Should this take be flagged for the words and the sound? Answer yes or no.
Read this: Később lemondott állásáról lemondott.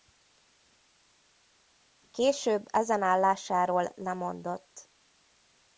yes